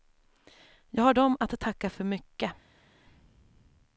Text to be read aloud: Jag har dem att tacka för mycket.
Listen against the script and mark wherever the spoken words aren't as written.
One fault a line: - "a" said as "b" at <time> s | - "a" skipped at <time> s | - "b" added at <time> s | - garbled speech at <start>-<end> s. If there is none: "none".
none